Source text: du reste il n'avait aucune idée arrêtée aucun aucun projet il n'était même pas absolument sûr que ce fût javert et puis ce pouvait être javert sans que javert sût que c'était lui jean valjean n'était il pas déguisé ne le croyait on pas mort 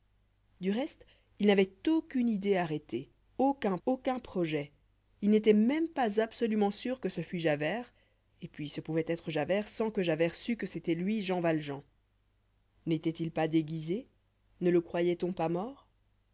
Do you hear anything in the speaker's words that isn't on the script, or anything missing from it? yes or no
no